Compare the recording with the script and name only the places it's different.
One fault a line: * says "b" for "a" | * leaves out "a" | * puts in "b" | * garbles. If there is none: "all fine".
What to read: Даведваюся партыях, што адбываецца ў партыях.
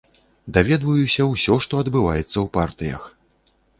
* says "ўсё" for "партыях"